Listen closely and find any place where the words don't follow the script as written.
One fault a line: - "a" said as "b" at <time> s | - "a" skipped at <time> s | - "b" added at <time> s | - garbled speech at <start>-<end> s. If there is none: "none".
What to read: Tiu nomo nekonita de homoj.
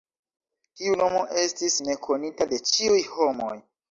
- "estis" added at 1.4 s
- "ĉiuj" added at 2.7 s